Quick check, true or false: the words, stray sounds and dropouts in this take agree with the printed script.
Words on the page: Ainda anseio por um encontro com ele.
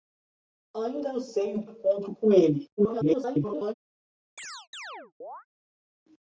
false